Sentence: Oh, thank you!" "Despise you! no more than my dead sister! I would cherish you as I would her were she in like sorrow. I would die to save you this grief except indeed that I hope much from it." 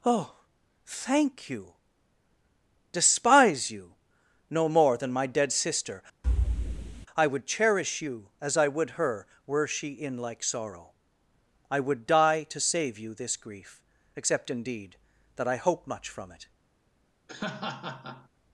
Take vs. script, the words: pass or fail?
pass